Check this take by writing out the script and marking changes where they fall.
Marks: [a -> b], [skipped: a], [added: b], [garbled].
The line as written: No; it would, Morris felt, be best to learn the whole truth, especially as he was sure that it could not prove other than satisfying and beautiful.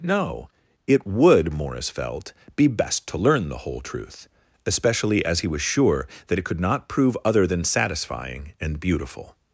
No; it would, Morris felt, be best to learn the whole truth, especially as he was sure that it could not prove other than satisfying and beautiful.